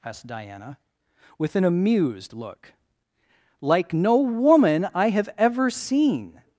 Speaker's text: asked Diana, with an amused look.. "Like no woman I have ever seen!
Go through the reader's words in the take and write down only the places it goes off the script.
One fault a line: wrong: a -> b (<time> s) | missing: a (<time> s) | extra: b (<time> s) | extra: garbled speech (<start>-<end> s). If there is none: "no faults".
no faults